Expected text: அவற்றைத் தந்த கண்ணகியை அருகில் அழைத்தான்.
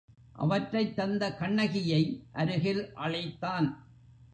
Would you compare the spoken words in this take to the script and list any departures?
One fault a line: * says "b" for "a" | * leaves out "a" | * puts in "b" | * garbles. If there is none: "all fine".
all fine